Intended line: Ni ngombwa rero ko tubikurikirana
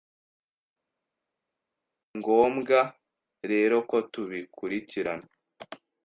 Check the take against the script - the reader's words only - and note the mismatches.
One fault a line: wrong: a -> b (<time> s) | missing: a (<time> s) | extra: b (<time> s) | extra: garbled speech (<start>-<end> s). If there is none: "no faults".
no faults